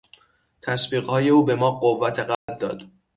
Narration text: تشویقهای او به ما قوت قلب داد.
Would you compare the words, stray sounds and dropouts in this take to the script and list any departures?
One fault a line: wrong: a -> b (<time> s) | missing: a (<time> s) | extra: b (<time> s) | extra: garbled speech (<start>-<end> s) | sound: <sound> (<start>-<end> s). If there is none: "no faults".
sound: dropout (2.3-2.5 s)